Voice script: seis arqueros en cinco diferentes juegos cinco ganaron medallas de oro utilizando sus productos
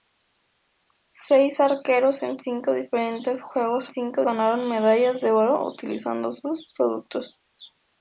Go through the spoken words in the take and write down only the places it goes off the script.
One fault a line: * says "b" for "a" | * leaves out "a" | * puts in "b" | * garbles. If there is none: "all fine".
all fine